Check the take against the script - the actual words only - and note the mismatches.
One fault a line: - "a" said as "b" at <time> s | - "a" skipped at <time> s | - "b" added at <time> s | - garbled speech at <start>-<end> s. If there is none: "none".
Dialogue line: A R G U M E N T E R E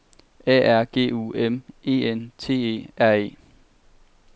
none